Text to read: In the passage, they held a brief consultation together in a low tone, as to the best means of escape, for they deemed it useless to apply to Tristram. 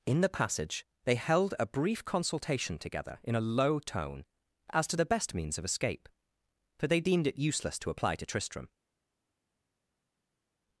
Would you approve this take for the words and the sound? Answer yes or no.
yes